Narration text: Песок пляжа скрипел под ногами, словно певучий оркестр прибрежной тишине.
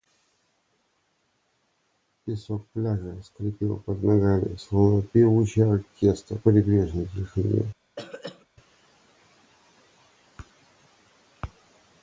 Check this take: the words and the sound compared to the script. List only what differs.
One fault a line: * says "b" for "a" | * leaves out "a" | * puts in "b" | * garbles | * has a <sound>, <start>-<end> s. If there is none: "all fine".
* has a throat clearing, 8.0-8.5 s